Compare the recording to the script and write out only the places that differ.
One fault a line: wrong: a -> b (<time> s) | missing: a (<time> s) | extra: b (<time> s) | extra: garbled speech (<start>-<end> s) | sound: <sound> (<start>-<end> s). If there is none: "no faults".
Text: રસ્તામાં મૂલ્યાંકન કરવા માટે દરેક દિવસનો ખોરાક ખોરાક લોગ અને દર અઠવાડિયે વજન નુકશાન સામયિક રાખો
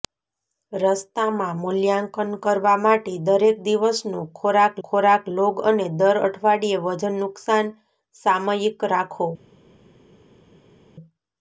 no faults